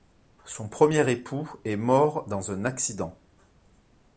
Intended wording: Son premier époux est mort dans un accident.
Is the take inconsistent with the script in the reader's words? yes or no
no